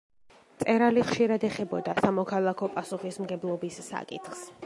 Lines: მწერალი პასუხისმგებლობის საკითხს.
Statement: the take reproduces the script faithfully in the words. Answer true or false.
false